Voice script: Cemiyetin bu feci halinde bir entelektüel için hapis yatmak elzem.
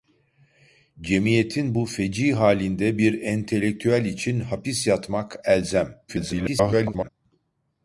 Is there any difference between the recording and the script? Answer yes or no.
yes